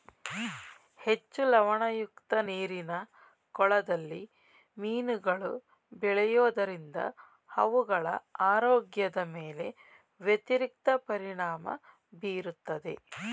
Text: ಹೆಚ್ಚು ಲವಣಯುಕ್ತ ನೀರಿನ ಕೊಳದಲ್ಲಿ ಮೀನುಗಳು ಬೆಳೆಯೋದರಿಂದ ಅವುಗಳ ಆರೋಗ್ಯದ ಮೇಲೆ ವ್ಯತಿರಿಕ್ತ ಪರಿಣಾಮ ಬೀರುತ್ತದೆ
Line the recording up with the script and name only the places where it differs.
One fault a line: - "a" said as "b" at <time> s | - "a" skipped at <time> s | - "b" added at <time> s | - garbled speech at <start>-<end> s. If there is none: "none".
none